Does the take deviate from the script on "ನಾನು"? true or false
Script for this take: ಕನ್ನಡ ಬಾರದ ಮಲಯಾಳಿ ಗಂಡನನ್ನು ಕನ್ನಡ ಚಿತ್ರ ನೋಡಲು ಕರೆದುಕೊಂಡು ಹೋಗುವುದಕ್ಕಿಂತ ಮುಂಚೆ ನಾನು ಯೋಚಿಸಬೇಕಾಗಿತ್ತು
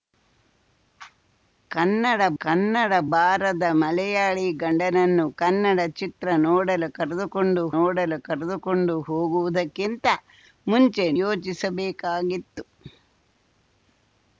true